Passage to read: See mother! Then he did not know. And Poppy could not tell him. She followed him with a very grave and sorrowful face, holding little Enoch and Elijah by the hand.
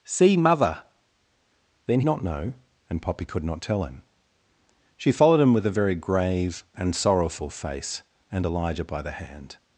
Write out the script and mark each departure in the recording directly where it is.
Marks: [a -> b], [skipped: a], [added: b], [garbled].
See mother! Then [skipped: he did] not know. And Poppy could not tell him. She followed him with a very grave and sorrowful face, [skipped: holding little Enoch] and Elijah by the hand.